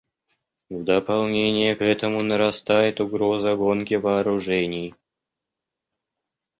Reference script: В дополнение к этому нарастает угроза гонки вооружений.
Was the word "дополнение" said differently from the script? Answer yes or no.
no